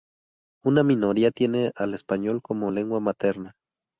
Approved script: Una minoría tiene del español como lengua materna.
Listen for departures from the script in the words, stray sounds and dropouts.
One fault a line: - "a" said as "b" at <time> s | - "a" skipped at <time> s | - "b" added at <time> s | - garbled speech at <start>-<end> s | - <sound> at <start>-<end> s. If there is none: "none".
- "del" said as "al" at 1.8 s